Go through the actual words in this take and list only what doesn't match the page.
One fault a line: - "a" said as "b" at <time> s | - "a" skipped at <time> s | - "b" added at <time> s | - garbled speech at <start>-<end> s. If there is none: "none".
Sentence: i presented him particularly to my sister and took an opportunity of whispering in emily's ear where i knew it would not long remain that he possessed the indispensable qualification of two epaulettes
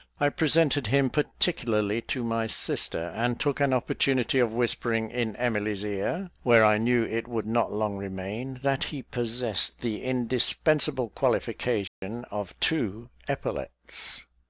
none